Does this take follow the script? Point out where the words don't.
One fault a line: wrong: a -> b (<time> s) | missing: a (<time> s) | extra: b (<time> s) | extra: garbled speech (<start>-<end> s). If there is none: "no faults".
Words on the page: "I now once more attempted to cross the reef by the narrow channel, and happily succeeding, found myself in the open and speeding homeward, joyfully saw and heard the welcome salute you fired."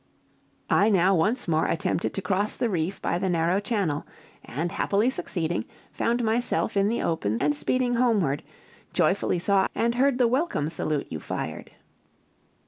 no faults